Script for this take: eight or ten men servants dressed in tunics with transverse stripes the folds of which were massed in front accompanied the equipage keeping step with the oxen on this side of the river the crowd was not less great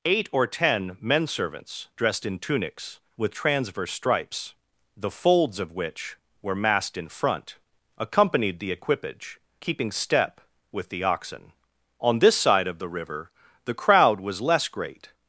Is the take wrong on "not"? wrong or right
wrong